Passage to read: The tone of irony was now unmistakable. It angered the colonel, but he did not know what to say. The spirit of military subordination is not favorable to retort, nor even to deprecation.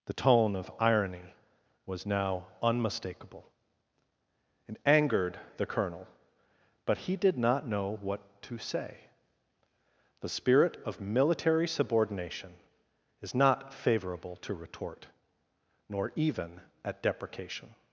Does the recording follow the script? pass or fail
fail